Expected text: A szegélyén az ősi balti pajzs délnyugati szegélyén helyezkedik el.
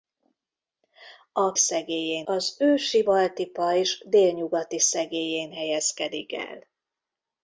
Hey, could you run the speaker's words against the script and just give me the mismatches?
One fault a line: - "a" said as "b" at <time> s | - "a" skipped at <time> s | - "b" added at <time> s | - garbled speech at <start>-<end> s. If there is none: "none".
none